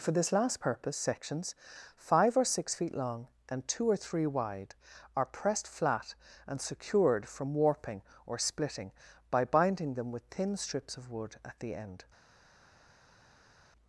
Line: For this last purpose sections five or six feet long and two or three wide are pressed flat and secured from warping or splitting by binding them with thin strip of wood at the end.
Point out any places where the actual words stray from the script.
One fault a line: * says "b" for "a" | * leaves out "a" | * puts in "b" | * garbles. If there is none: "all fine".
* says "strips" for "strip"